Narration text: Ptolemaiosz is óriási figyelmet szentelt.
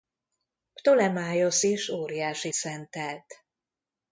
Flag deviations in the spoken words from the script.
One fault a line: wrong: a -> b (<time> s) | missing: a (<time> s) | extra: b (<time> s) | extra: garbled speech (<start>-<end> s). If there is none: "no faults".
missing: figyelmet (2.5 s)